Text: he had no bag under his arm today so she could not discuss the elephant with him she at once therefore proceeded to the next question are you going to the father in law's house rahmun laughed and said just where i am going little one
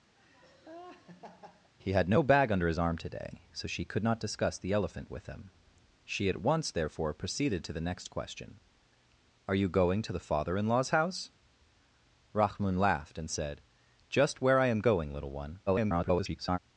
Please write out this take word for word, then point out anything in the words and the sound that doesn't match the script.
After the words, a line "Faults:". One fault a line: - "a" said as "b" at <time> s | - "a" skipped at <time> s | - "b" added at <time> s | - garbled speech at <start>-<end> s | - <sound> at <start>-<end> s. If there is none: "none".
he had no bag under his arm today so she could not discuss the elephant with him she at once therefore proceeded to the next question are you going to the father in law's house rahmun laughed and said just where i am going little one [garbled]
Faults:
- laugh at 0.2-1.7 s
- garbled speech at 15.7-16.6 s